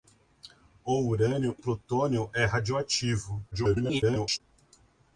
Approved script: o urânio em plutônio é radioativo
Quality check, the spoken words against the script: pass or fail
fail